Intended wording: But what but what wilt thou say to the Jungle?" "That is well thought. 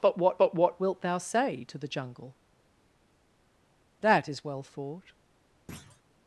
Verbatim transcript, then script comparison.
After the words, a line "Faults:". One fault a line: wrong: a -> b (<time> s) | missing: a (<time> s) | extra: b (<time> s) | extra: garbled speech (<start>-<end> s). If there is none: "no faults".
But what but what wilt thou say to the Jungle?" "That is well thought.
Faults:
no faults